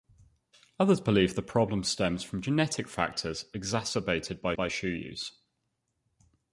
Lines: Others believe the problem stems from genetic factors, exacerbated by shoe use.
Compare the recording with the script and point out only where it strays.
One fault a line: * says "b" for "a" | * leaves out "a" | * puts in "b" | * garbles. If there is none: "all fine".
* puts in "by"